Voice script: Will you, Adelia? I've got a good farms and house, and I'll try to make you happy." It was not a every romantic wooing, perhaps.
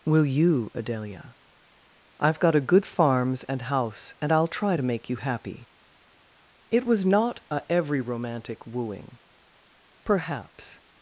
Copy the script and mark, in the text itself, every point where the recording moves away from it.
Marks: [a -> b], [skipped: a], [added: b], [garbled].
Will you, Adelia? I've got a good farms and house, and I'll try to make you happy." It was not a every romantic wooing, perhaps.